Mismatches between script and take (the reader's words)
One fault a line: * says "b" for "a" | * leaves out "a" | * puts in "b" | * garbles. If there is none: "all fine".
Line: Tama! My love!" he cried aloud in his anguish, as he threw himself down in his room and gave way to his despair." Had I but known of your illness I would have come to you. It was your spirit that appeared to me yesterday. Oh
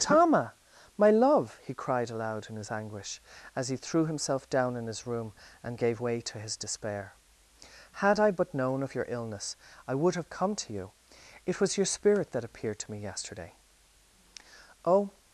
all fine